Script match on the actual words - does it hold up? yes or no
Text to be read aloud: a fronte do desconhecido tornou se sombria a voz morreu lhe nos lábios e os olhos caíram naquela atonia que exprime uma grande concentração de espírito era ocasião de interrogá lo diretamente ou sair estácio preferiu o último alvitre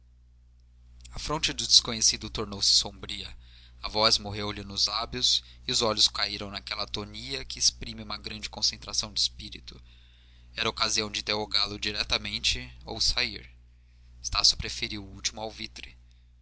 yes